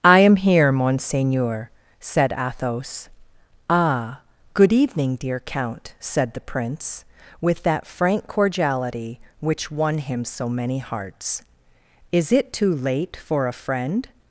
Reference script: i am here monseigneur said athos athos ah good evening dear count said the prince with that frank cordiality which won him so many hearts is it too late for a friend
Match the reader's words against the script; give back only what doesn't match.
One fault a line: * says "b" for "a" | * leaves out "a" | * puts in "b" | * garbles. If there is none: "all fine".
* leaves out "athos"